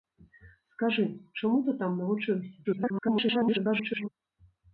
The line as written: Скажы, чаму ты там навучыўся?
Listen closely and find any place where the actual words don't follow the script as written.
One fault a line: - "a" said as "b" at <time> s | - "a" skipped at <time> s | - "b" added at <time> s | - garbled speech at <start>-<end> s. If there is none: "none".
- garbled speech at 2.6-4.1 s